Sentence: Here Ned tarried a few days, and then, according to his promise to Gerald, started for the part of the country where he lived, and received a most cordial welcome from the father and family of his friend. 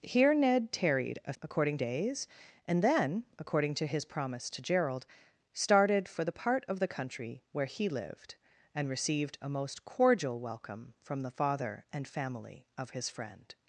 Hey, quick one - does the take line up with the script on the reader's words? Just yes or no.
no